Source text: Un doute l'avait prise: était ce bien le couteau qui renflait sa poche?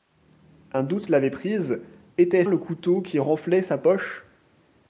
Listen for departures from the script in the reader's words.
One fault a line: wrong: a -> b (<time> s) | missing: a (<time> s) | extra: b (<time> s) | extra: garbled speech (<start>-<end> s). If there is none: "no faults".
missing: ce bien (2.4 s)